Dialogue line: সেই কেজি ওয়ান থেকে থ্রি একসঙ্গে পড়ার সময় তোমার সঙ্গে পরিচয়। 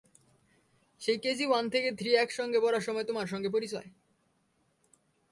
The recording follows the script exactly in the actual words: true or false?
true